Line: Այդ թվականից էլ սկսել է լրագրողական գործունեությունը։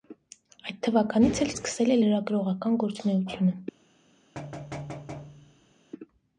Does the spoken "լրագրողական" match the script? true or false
true